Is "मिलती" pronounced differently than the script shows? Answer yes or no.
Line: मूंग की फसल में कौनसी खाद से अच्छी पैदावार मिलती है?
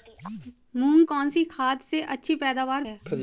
yes